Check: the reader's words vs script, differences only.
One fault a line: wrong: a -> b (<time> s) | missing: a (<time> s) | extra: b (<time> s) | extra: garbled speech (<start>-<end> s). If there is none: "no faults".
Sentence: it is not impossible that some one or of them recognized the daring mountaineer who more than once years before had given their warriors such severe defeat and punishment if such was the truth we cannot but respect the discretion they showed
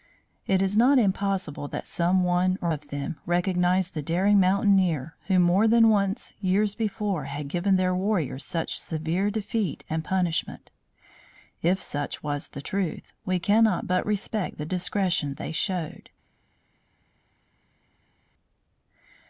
no faults